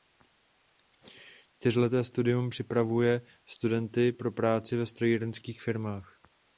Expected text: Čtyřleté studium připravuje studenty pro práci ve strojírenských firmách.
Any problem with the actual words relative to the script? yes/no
no